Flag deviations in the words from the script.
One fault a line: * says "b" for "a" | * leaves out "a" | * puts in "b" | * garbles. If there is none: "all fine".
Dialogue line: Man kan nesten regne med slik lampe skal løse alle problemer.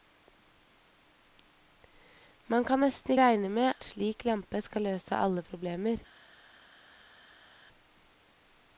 all fine